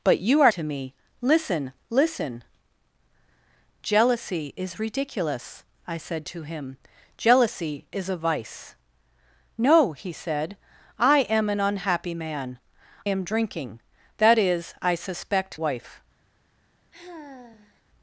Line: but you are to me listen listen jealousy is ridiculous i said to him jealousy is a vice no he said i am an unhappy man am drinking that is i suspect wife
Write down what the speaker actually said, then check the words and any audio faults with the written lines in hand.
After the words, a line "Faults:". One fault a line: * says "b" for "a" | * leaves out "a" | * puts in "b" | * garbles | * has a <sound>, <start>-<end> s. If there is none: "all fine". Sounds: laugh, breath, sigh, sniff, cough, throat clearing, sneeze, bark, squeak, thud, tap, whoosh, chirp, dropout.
but you are to me listen listen jealousy is ridiculous i said to him jealousy is a vice no he said i am an unhappy man am drinking that is i suspect wife
Faults:
* has a sigh, 16.9-17.8 s